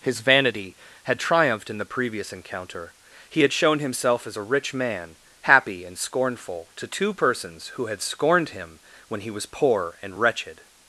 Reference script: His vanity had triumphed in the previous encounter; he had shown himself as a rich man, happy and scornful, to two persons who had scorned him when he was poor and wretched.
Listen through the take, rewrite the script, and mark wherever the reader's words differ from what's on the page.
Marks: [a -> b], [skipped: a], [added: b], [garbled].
His vanity had triumphed in the previous encounter; he had shown himself as a rich man, happy and scornful, to two persons who had scorned him when he was poor and wretched.